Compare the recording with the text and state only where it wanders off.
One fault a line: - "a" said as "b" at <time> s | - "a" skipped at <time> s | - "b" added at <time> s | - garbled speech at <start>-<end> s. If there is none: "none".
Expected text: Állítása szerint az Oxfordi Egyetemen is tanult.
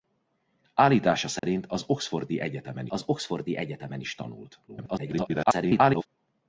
- "az Oxfordi Egyetemen" added at 2.9 s
- garbled speech at 4.7-6.1 s